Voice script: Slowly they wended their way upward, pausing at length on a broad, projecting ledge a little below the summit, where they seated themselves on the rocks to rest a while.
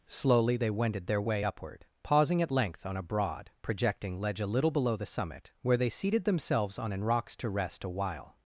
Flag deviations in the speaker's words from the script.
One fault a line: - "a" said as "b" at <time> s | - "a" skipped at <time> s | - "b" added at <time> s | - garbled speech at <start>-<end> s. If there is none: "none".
- "the" said as "an" at 6.9 s